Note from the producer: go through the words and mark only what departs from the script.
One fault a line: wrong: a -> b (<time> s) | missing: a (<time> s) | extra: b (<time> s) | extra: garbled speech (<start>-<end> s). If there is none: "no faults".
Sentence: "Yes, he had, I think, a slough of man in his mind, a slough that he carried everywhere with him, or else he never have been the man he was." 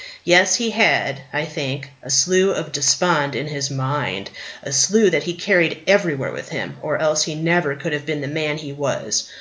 wrong: man -> despond (2.7 s)
extra: could (7.8 s)